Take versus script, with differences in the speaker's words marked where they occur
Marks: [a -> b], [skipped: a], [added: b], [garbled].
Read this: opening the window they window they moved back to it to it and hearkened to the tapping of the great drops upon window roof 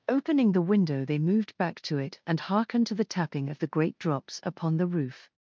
opening the window they [skipped: window they] moved back to it [skipped: to it] and hearkened to the tapping of the great drops upon [window -> the] roof